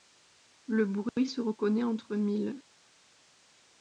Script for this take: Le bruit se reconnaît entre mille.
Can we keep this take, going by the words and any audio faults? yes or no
yes